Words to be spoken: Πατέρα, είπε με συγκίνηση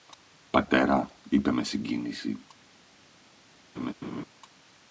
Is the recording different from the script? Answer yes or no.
no